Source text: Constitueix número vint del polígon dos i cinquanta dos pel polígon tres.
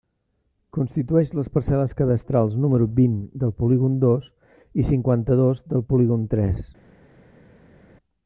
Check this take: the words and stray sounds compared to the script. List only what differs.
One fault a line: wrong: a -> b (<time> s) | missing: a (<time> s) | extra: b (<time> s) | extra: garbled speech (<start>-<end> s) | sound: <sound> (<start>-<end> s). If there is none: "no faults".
extra: les parcel·les cadastrals (1.4 s)
wrong: pel -> del (5.7 s)